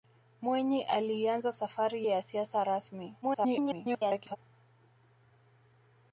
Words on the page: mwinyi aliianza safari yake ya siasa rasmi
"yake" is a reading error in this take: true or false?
true